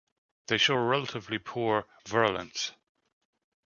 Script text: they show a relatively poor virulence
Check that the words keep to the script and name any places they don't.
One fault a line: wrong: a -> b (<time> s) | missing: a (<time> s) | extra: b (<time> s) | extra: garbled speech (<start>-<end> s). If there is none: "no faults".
no faults